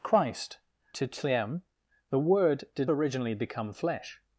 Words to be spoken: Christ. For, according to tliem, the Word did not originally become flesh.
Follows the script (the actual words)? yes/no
no